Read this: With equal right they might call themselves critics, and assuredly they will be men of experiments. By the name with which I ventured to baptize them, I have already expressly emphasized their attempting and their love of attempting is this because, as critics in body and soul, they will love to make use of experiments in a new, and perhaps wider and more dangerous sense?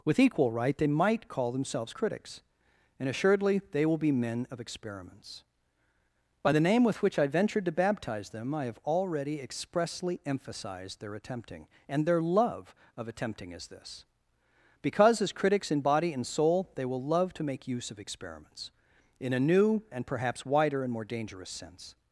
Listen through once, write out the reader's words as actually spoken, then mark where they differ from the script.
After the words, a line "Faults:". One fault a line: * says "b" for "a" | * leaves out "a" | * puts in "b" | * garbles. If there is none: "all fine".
With equal right they might call themselves critics, and assuredly they will be men of experiments. By the name with which I ventured to baptize them, I have already expressly emphasized their attempting and their love of attempting is this because, as critics in body and soul, they will love to make use of experiments in a new, and perhaps wider and more dangerous sense?
Faults:
all fine